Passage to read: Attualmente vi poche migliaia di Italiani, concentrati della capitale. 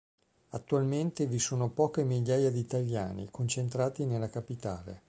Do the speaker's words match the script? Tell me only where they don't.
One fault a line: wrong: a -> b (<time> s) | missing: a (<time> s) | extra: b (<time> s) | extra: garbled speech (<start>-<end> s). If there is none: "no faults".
extra: sono (1.4 s)
wrong: della -> nella (4.1 s)